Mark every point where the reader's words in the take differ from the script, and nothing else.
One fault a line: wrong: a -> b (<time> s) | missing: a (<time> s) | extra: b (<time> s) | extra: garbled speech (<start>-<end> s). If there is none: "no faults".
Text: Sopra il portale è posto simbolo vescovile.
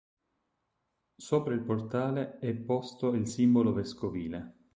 extra: il (3.1 s)